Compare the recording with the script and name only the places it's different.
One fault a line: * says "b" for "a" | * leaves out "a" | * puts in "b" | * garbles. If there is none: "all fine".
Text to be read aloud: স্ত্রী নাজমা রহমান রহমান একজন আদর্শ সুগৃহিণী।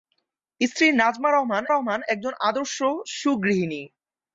all fine